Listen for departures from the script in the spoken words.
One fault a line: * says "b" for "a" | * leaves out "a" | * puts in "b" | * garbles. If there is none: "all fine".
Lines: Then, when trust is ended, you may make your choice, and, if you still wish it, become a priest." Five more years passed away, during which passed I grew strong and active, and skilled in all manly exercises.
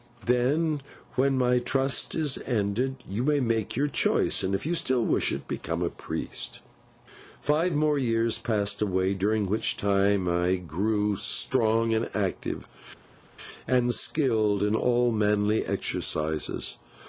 * puts in "my"
* says "time" for "passed"